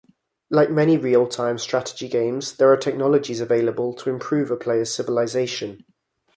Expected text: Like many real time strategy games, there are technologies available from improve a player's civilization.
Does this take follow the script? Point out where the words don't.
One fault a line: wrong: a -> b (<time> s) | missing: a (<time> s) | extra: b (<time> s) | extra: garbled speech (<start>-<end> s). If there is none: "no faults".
wrong: from -> to (4.0 s)